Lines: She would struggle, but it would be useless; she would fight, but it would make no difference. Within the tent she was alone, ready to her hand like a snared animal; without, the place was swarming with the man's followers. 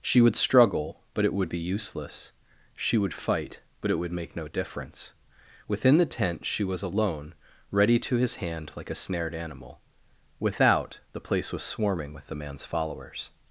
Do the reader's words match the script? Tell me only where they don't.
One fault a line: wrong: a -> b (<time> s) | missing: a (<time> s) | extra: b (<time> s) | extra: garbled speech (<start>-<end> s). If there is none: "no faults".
wrong: her -> his (8.1 s)